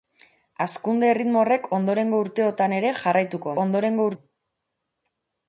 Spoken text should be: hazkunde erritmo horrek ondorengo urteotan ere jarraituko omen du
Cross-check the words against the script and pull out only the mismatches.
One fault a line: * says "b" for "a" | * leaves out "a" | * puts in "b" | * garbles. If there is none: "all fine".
* says "ondorengo" for "omen"